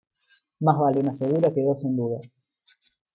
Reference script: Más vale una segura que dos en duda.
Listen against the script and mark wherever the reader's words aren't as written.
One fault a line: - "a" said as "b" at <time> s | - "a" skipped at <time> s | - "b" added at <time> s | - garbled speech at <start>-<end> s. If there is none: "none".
none